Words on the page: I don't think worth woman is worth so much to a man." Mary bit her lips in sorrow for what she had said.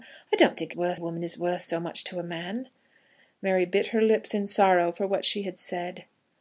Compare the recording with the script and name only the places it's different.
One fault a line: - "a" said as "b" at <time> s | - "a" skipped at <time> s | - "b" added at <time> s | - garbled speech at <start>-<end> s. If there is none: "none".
none